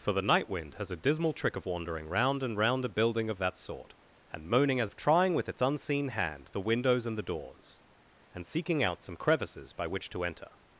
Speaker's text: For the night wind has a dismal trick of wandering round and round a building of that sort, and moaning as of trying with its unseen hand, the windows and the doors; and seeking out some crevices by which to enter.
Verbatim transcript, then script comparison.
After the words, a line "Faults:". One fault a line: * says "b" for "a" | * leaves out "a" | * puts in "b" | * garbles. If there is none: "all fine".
For the night wind has a dismal trick of wandering round and round a building of that sort, and moaning as of trying with its unseen hand, the windows and the doors; and seeking out some crevices by which to enter.
Faults:
all fine